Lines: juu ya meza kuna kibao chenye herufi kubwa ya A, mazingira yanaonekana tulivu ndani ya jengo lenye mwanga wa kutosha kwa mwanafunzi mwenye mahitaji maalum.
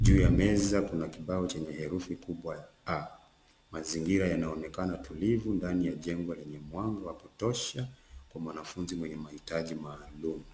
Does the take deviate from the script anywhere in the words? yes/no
no